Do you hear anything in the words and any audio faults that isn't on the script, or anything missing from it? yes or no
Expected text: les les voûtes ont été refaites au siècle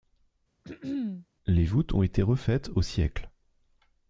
yes